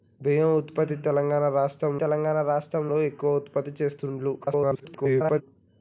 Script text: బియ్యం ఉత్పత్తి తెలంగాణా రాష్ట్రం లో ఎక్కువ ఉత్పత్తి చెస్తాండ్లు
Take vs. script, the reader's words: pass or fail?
fail